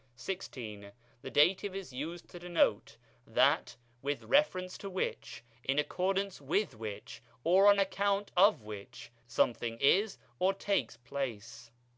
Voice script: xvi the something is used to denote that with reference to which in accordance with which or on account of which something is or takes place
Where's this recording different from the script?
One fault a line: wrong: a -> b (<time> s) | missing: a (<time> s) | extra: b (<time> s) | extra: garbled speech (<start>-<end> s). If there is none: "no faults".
wrong: something -> dative (1.3 s)